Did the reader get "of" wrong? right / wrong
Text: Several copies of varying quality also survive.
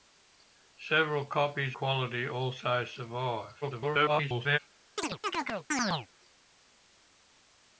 wrong